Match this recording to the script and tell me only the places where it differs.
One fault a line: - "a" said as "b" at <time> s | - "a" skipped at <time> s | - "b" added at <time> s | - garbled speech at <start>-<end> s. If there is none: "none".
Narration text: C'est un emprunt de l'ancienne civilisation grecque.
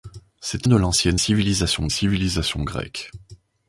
- "un emprunt" skipped at 0.7 s
- "civilisation" added at 1.9 s